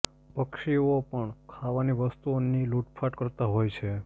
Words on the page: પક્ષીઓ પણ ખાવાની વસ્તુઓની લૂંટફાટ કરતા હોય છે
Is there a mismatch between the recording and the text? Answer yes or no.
no